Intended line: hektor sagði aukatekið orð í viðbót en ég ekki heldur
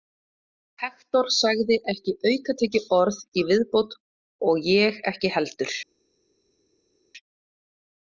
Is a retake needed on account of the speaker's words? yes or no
yes